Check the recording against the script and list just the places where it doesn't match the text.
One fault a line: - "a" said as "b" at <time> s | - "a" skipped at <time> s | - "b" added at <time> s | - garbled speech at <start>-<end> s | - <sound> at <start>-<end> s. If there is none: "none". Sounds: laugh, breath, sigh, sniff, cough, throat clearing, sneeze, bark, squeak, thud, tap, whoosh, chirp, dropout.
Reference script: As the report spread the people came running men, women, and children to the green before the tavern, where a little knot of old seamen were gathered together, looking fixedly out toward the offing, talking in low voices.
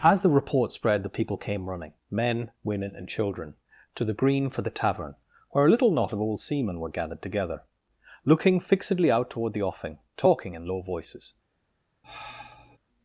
- "before" said as "for" at 4.5 s
- sigh at 12.0-12.8 s